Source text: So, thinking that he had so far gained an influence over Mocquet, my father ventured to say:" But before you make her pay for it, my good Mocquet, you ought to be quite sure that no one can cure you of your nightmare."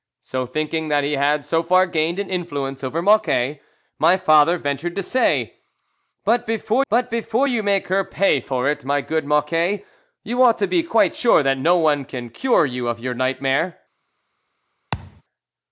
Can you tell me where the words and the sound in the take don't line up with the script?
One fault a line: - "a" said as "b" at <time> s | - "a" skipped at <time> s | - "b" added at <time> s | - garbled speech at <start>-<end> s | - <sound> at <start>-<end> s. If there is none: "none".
- "But before" added at 6.9 s
- thud at 14.9-15.2 s